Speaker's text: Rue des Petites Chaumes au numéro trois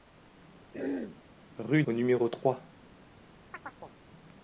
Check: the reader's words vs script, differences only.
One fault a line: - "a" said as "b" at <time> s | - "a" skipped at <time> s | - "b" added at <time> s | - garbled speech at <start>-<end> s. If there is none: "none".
- "des Petites Chaumes" skipped at 1.8 s